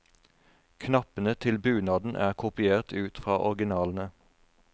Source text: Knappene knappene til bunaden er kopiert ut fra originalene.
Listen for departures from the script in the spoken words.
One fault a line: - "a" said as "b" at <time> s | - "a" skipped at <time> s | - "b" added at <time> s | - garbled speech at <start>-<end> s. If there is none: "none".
- "knappene" skipped at 1.3 s